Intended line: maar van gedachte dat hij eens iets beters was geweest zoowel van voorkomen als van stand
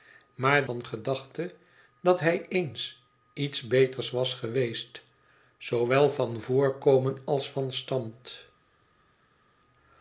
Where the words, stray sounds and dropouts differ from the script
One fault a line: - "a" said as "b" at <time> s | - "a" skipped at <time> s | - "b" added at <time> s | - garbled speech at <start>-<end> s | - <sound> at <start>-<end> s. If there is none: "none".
none